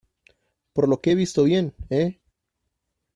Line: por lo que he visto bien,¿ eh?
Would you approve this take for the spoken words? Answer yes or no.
yes